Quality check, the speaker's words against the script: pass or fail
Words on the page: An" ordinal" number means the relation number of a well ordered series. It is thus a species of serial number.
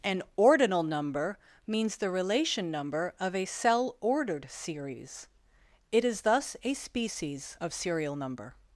fail